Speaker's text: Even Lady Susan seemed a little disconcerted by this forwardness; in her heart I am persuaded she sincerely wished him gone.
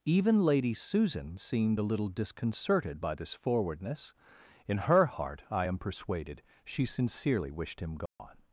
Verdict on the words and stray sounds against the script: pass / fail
fail